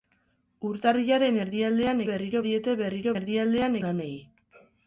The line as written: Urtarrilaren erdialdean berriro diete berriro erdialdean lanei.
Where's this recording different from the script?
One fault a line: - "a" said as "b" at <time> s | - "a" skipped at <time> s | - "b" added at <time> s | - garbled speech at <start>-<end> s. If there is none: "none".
none